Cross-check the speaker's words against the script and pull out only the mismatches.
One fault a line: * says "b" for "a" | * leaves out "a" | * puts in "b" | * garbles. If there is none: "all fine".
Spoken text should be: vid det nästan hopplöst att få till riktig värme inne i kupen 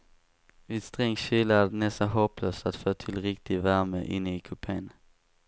* puts in "sträng kyla är"